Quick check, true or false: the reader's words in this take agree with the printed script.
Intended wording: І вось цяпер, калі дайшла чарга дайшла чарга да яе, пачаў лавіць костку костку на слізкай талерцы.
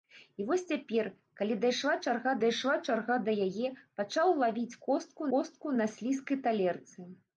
true